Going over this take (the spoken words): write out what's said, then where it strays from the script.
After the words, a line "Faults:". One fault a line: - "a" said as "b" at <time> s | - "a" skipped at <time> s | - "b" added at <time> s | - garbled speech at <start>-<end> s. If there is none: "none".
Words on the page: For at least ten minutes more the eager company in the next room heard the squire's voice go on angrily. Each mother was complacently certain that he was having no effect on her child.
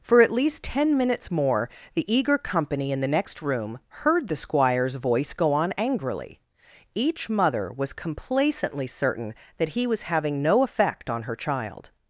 For at least ten minutes more the eager company in the next room heard the squire's voice go on angrily. Each mother was complacently certain that he was having no effect on her child.
Faults:
none